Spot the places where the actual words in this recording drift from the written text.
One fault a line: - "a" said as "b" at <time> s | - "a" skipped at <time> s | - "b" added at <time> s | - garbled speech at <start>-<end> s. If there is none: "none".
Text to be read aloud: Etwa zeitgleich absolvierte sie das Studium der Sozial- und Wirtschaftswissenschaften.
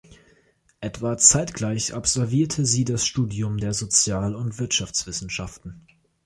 none